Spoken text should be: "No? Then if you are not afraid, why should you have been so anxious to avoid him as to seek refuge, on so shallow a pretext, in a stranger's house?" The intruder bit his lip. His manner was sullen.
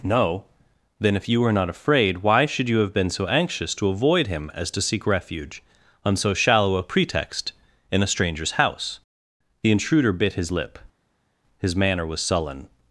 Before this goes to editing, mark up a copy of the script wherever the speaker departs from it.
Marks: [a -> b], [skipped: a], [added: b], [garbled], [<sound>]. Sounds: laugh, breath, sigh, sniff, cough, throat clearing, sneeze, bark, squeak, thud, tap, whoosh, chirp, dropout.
"No? Then if you [are -> were] not afraid, why should you have been so anxious to avoid him as to seek refuge, on so shallow a pretext, in a stranger's house?" The intruder bit his lip. His manner was sullen.